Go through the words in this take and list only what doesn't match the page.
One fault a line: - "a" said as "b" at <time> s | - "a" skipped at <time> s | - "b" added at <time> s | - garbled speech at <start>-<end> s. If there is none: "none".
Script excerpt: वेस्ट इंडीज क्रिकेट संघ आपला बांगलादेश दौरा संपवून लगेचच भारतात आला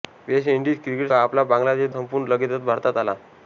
- "संघ" skipped at 1.1 s
- "दौरा" skipped at 1.9 s